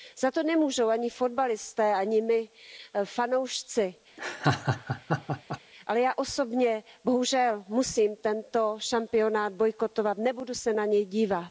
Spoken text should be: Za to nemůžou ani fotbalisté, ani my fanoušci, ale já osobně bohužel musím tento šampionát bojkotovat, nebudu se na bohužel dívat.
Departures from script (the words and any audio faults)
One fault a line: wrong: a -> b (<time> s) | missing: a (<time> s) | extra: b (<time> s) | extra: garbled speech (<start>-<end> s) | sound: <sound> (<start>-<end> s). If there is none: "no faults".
sound: laugh (4.2-5.6 s)
wrong: bohužel -> něj (10.8 s)